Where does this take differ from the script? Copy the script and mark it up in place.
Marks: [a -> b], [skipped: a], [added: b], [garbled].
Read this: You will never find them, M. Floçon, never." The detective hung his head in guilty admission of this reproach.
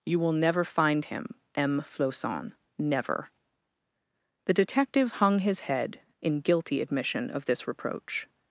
You will never find [them, -> him] M. Floçon, never." The detective hung his head in guilty admission of this reproach.